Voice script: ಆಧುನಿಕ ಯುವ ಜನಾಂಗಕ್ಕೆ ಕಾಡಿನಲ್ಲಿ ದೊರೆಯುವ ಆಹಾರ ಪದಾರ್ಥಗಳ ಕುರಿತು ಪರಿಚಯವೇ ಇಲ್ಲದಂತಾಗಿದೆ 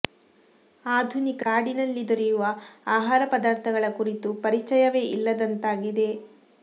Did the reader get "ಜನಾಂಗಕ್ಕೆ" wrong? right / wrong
wrong